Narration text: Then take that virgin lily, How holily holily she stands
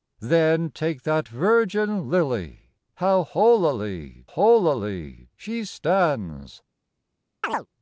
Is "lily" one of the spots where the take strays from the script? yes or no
no